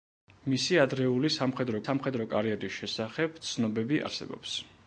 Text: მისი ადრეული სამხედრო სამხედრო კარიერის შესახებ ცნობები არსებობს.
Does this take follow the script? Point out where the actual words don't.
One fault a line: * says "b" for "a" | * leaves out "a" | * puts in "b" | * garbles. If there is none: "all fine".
all fine